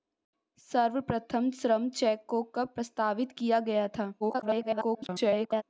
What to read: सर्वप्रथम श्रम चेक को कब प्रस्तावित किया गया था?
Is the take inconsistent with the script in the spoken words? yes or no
yes